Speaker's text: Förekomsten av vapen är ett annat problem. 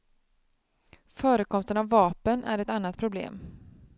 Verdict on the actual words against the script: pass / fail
pass